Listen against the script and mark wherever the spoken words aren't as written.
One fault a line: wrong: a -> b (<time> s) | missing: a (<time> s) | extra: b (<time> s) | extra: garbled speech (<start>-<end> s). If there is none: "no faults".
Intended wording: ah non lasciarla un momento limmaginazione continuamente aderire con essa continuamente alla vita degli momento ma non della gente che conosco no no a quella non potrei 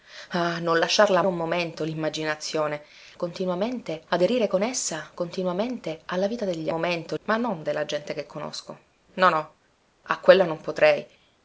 no faults